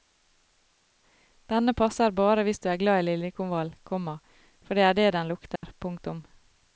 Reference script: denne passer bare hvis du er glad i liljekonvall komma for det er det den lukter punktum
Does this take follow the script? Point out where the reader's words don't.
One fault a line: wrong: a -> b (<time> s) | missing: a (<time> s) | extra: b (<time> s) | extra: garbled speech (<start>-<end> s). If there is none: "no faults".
no faults